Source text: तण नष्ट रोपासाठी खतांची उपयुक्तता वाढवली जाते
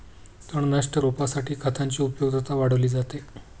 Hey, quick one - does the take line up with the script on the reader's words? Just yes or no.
yes